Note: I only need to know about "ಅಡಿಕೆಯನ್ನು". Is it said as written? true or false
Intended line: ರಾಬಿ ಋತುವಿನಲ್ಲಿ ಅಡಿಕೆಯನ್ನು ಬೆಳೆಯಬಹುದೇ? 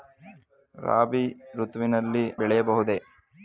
false